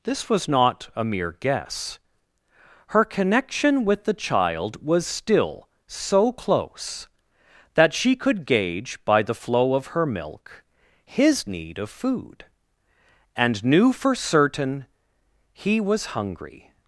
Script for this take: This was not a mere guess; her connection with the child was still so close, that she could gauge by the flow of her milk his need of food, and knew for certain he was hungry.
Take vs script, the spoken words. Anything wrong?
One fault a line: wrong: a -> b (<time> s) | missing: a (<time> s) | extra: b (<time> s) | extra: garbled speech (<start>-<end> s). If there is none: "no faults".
no faults